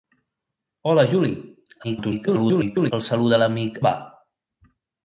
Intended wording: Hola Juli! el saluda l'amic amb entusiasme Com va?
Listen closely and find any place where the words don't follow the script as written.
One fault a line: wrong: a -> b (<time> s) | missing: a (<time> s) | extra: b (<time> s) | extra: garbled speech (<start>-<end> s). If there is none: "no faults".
extra: garbled speech (1.8-2.9 s)
missing: amb entusiasme Com (3.8 s)